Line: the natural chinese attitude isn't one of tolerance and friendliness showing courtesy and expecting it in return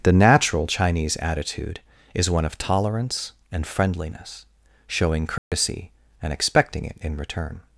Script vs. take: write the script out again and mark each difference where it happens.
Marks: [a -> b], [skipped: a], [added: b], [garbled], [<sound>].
the natural chinese attitude [isn't -> is] one of tolerance and friendliness showing courtesy [dropout] and expecting it in return